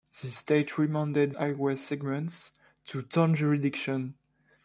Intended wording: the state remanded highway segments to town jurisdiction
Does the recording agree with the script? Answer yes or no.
yes